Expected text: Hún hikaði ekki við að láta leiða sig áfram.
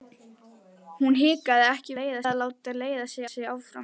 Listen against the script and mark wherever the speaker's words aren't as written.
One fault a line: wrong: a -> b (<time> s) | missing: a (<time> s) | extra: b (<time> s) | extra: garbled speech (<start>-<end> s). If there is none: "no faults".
wrong: við -> leiða (2.0 s)
extra: sig (3.3 s)